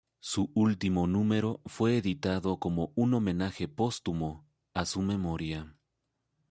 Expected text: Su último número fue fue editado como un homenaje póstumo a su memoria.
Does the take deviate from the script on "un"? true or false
false